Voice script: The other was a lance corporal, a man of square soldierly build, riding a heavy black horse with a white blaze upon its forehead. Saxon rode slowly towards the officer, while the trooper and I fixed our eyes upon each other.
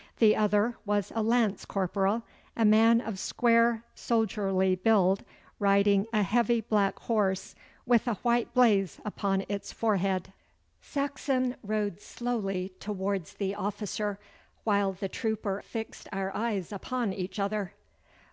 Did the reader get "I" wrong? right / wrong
wrong